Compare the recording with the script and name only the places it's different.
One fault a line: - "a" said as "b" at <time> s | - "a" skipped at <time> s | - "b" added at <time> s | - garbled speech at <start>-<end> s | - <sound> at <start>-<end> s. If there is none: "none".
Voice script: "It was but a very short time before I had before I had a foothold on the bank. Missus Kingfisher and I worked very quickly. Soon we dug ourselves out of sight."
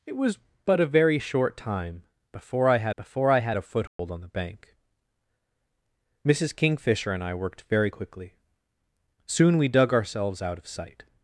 - dropout at 3.9-4.0 s